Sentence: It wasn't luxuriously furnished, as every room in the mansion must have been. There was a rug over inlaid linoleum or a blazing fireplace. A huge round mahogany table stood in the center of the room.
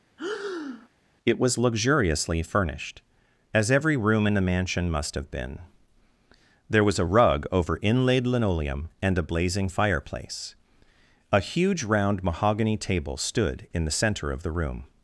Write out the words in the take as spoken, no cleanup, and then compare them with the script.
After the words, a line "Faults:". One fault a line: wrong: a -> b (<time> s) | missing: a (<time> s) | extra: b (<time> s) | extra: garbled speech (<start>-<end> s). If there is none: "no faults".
It was luxuriously furnished, as every room in the mansion must have been. There was a rug over inlaid linoleum and a blazing fireplace. A huge round mahogany table stood in the center of the room.
Faults:
wrong: wasn't -> was (1.4 s)
wrong: or -> and (9.0 s)